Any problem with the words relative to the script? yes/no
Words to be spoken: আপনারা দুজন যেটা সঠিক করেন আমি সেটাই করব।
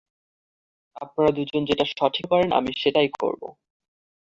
no